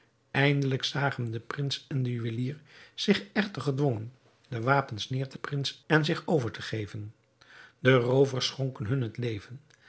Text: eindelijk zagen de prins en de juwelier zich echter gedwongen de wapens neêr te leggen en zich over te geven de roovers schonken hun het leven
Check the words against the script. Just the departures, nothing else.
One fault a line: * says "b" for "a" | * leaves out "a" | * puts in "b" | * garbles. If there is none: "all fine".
* says "prins" for "leggen"